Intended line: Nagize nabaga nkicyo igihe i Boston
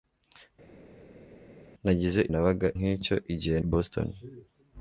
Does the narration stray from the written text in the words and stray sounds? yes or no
no